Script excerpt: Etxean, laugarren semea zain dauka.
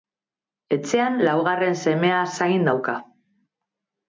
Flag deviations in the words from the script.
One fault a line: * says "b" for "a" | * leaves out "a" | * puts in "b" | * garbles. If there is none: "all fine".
all fine